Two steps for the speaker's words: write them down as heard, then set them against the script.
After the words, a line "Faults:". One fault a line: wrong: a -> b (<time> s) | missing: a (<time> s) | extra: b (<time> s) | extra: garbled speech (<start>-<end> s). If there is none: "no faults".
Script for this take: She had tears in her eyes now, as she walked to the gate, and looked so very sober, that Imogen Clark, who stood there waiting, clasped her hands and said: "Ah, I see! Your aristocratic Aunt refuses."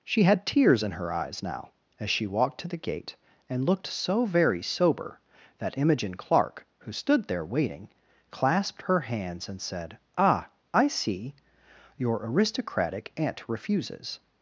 She had tears in her eyes now, as she walked to the gate, and looked so very sober, that Imogen Clark, who stood there waiting, clasped her hands and said: "Ah, I see! Your aristocratic Aunt refuses."
Faults:
no faults